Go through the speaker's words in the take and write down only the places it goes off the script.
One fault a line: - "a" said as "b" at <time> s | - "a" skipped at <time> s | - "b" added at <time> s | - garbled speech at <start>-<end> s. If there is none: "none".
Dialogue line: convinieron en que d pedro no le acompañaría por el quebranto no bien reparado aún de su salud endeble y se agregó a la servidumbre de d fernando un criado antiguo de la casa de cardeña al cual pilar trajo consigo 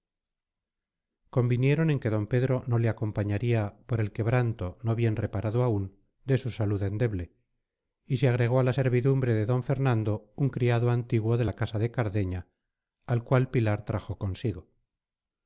none